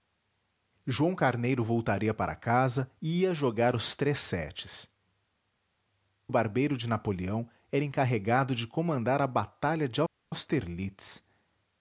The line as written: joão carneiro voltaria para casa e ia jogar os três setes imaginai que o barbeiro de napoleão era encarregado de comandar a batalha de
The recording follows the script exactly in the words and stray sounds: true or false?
false